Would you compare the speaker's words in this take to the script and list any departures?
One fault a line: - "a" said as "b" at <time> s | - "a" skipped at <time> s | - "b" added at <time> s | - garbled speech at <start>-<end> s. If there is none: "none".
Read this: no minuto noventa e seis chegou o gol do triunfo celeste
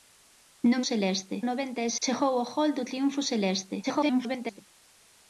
- "minuto" said as "celeste" at 0.9 s
- "seis" skipped at 1.9 s
- garbled speech at 3.8-4.6 s